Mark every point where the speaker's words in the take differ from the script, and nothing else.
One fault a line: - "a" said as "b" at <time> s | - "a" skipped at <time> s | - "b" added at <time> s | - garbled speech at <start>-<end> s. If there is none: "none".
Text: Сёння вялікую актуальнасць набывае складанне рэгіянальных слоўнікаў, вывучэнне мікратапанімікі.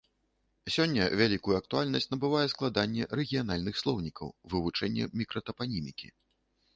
none